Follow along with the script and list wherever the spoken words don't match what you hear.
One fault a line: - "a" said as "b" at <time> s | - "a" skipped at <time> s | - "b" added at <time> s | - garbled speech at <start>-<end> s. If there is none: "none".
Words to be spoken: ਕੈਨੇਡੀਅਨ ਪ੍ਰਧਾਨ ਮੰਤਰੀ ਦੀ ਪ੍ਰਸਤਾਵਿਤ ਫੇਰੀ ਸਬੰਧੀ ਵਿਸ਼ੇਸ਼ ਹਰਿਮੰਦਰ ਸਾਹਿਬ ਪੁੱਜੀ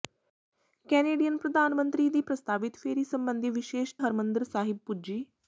none